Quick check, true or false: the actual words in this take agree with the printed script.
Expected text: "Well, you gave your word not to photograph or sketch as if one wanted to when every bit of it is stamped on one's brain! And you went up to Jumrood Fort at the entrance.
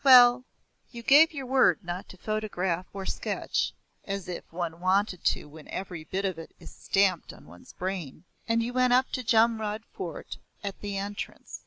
true